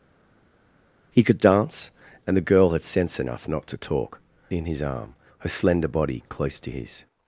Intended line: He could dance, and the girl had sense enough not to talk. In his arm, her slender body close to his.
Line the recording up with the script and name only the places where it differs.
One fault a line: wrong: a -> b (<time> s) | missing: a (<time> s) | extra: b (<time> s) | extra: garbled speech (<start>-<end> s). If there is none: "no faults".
no faults